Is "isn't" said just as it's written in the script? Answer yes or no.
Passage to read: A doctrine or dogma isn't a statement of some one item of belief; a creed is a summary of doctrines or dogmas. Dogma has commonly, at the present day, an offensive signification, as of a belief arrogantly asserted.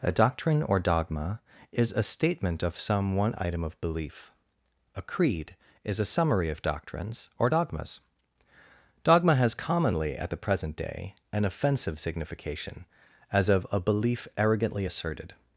no